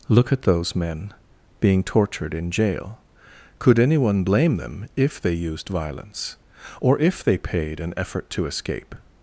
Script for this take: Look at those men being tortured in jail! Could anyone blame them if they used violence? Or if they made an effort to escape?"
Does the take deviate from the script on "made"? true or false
true